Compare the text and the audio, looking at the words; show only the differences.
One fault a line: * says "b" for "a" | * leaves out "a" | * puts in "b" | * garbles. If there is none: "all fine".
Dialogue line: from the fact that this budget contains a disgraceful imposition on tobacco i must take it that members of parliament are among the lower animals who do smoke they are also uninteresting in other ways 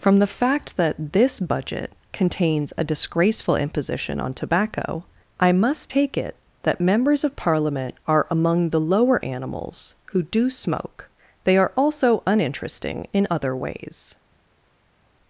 all fine